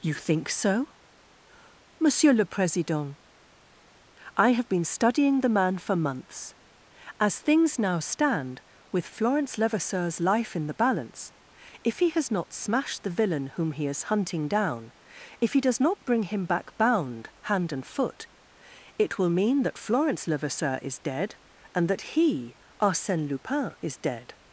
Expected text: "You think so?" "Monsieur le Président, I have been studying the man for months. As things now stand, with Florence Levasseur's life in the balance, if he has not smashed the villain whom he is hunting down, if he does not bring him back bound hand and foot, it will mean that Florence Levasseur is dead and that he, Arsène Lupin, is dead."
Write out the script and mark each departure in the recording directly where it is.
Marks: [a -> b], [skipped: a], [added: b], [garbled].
"You think so?" "Monsieur le Président, I have been studying the man for months. As things now stand, with Florence Levasseur's life in the balance, if he has not smashed the villain whom he is hunting down, if he does not bring him back bound hand and foot, it will mean that Florence Levasseur is dead and that he, Arsène Lupin, is dead."